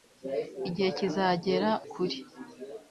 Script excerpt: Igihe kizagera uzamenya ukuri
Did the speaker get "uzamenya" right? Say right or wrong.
wrong